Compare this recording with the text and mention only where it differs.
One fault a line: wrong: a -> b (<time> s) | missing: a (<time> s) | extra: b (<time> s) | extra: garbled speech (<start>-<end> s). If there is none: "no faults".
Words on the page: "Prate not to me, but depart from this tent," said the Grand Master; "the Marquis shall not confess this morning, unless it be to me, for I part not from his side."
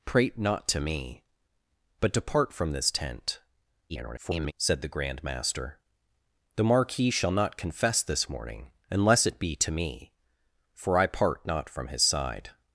extra: garbled speech (3.9-4.5 s)